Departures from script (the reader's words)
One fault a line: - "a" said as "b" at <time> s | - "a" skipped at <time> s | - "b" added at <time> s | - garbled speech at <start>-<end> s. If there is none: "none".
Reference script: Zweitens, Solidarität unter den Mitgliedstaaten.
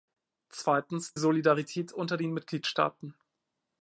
none